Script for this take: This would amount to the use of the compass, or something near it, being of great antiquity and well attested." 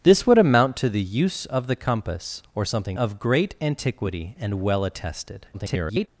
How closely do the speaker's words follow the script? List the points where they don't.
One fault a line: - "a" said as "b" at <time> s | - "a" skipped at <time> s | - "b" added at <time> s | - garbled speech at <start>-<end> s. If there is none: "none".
- "near it being" skipped at 3.0 s
- garbled speech at 5.5-6.1 s